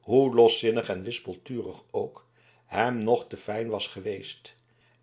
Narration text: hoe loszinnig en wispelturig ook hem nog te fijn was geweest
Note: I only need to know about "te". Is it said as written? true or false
true